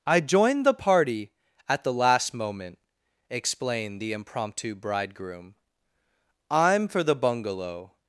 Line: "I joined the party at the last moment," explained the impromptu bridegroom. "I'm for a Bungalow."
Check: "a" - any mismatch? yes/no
yes